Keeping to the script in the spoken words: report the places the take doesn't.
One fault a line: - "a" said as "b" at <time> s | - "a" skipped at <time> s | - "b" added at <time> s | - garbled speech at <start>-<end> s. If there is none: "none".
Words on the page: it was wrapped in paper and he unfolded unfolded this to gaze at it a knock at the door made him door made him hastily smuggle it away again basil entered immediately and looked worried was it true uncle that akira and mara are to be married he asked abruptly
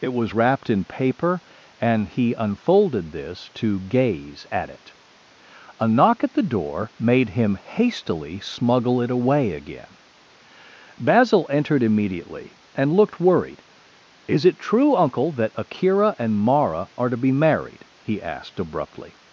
- "unfolded" skipped at 3.1 s
- "door made him" skipped at 7.6 s
- "was" said as "is" at 14.3 s